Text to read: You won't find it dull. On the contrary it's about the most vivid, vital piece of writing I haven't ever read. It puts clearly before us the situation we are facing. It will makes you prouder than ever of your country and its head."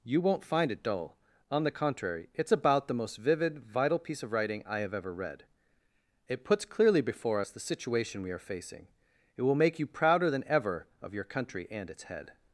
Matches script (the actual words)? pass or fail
fail